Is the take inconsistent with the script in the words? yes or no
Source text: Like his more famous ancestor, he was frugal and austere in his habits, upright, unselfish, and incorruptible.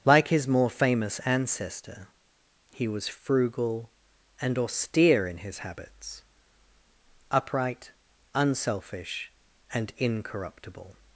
no